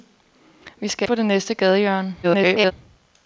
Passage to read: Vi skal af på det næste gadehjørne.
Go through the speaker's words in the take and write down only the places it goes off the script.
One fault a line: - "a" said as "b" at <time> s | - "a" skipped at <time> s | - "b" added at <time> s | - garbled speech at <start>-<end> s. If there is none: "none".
- "af" skipped at 1.1 s
- garbled speech at 2.2-2.7 s